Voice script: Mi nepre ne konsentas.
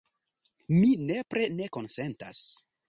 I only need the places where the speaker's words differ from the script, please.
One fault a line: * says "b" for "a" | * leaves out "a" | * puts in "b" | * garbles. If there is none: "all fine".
all fine